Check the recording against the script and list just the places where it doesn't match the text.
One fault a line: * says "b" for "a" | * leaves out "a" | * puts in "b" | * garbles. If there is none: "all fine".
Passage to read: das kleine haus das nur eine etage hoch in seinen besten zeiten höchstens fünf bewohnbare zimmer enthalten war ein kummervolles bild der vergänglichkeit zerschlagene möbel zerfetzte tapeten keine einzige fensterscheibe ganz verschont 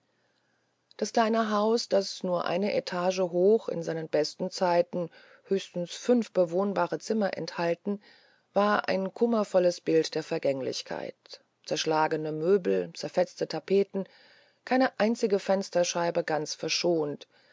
all fine